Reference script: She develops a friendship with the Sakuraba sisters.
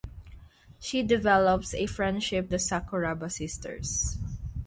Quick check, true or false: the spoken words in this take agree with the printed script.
false